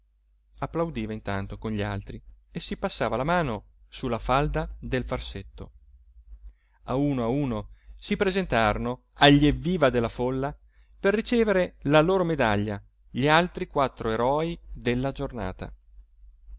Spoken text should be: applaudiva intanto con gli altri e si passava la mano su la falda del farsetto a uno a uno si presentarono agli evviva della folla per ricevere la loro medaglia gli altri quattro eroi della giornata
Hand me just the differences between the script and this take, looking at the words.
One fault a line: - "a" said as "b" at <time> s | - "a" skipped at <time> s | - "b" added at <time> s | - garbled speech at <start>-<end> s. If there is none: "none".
none